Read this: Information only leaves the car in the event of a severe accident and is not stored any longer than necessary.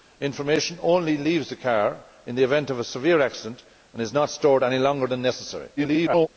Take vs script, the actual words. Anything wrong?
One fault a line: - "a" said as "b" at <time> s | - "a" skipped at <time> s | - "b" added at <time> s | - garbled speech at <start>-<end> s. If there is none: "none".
- garbled speech at 5.8-6.3 s